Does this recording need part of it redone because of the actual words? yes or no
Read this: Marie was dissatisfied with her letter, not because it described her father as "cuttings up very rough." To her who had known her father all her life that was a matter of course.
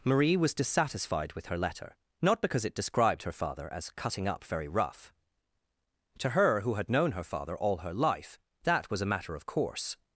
yes